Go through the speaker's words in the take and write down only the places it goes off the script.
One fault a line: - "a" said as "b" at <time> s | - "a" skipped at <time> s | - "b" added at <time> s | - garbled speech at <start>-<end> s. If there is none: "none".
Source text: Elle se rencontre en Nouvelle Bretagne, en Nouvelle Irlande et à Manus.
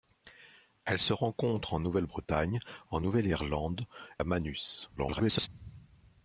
- "et" skipped at 3.8 s
- garbled speech at 5.0-5.5 s